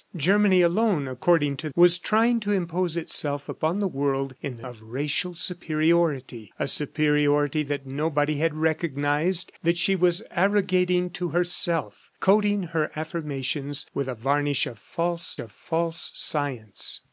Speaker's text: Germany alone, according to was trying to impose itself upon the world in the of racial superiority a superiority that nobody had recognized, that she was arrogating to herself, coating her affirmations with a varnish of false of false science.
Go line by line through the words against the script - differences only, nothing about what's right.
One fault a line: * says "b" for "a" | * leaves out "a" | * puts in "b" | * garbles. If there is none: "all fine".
all fine